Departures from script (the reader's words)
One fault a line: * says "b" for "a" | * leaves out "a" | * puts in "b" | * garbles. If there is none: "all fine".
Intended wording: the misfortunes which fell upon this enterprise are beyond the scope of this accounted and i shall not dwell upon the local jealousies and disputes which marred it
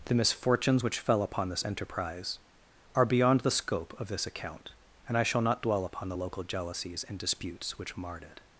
* says "account" for "accounted"